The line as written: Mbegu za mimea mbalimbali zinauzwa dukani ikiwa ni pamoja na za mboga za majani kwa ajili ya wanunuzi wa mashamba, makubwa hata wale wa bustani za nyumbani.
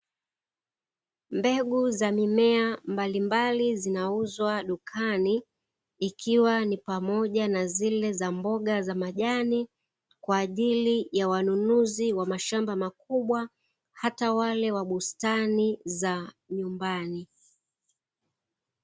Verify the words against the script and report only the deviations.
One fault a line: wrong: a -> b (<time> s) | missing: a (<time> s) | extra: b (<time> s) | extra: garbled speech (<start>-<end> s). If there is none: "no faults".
extra: zile (7.7 s)